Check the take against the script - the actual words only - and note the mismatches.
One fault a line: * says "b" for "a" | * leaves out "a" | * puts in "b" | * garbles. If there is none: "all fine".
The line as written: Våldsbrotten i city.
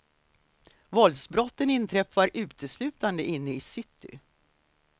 * puts in "inträffar uteslutande inne"